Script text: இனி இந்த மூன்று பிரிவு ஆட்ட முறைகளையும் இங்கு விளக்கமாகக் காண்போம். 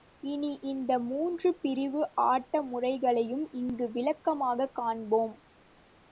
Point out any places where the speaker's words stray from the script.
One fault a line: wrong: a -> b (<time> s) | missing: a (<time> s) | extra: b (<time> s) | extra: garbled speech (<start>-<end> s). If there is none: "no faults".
no faults